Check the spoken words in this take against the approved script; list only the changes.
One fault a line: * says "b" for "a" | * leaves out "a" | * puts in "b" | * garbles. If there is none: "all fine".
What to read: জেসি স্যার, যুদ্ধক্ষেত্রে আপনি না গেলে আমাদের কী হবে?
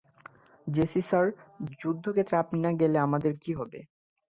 all fine